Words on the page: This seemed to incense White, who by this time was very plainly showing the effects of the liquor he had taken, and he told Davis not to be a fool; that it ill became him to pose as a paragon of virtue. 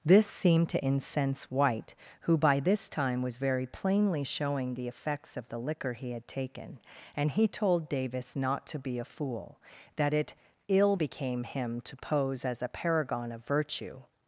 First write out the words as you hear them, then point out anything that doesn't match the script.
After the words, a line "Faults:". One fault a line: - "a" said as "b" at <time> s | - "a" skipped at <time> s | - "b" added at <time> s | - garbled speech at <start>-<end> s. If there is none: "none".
This seemed to incense White, who by this time was very plainly showing the effects of the liquor he had taken, and he told Davis not to be a fool; that it ill became him to pose as a paragon of virtue.
Faults:
none